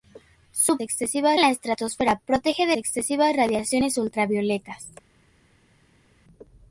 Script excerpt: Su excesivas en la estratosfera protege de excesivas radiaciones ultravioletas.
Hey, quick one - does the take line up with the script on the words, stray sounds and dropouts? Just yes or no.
yes